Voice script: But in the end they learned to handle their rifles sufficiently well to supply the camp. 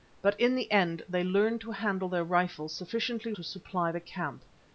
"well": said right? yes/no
no